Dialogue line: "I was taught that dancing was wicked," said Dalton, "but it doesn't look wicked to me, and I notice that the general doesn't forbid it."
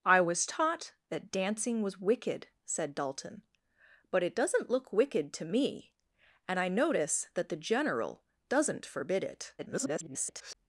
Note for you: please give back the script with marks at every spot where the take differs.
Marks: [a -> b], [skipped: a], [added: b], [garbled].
"I was taught that dancing was wicked," said Dalton, "but it doesn't look wicked to me, and I notice that the general doesn't forbid it." [garbled]